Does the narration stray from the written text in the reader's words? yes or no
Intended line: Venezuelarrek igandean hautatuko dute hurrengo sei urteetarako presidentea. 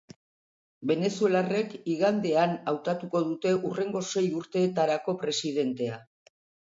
no